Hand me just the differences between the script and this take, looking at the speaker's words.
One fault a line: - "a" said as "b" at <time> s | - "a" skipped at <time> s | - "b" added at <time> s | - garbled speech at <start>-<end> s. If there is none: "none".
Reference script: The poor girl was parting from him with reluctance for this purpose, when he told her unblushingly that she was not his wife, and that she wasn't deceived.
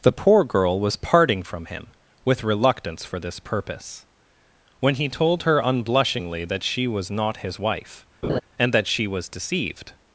- "wasn't" said as "was" at 9.1 s